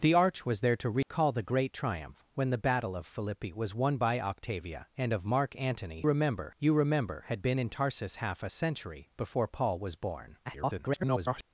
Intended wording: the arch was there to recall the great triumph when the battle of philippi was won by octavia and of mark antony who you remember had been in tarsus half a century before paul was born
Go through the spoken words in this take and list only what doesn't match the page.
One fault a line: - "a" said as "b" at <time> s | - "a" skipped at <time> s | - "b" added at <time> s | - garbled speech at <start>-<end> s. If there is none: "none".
- "who" said as "remember" at 6.0 s
- garbled speech at 10.4-11.4 s